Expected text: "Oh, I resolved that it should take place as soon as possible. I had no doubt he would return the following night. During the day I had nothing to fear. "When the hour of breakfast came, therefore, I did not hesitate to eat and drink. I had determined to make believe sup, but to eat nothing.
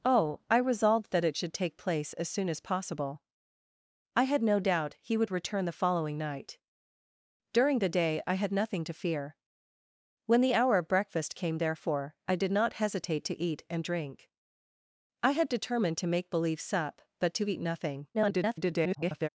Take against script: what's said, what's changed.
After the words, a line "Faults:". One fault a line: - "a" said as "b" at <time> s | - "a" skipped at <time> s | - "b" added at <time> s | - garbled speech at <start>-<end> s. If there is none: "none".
"Oh, I resolved that it should take place as soon as possible. I had no doubt he would return the following night. During the day I had nothing to fear. "When the hour of breakfast came, therefore, I did not hesitate to eat and drink. I had determined to make believe sup, but to eat nothing. [garbled]
Faults:
- garbled speech at 18.1-19.3 s